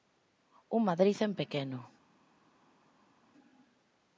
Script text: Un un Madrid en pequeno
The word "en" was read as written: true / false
true